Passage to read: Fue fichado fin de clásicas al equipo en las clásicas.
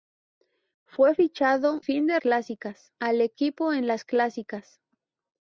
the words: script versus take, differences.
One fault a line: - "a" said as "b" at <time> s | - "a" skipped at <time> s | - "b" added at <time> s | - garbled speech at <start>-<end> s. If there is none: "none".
none